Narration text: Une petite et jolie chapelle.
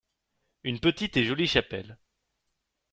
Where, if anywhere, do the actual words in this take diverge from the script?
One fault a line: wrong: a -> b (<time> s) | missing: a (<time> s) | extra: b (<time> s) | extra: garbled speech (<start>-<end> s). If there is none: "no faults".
no faults